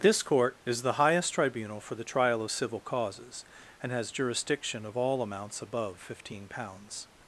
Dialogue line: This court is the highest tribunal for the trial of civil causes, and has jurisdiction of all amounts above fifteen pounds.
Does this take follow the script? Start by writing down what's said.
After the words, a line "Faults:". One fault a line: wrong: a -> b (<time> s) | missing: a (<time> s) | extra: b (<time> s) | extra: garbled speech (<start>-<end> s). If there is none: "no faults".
This court is the highest tribunal for the trial of civil causes, and has jurisdiction of all amounts above fifteen pounds.
Faults:
no faults